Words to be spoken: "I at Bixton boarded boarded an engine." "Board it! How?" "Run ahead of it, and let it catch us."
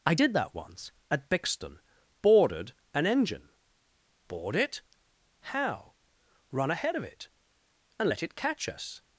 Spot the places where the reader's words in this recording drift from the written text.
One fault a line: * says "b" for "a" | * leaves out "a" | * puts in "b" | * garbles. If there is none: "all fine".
* puts in "did that once"
* leaves out "boarded"